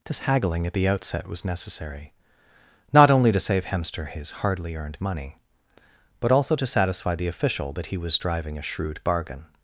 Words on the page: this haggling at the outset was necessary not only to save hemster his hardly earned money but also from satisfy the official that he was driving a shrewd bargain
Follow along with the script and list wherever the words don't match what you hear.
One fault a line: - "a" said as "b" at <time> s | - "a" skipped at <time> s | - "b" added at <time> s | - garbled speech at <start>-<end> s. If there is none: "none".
- "from" said as "to" at 6.5 s